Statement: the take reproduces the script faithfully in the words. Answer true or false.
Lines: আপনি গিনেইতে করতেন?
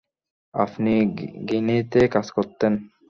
false